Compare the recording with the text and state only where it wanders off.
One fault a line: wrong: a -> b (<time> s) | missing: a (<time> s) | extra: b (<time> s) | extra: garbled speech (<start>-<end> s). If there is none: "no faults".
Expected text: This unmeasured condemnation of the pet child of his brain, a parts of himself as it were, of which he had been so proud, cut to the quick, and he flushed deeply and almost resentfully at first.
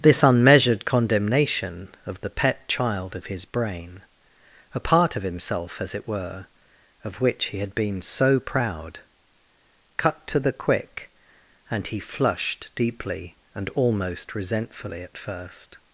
wrong: parts -> part (4.8 s)